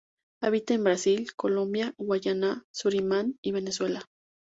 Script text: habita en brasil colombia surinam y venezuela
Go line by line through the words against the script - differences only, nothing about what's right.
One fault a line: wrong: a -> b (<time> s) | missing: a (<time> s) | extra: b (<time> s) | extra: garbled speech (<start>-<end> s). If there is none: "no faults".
extra: guayana (2.0 s)